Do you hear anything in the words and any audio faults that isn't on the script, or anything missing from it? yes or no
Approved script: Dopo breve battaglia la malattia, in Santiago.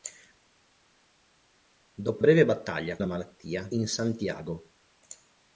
no